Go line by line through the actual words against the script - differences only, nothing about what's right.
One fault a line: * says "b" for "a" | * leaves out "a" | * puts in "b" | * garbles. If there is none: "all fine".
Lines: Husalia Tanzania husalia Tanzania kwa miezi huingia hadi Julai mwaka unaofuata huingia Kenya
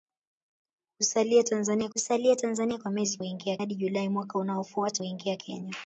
all fine